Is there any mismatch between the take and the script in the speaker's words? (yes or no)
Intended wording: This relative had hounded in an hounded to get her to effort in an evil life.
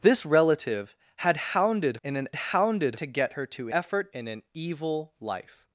no